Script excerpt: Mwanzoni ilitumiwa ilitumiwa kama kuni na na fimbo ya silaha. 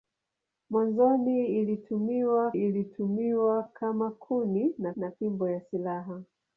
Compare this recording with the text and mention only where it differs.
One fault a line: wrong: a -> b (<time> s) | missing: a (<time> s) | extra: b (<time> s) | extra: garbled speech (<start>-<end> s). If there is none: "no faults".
no faults